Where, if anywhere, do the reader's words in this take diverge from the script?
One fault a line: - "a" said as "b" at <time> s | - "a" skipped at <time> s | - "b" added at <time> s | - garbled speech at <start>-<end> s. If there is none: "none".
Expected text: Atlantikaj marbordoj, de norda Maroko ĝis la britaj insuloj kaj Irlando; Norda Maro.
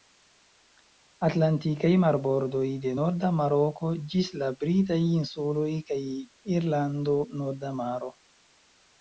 none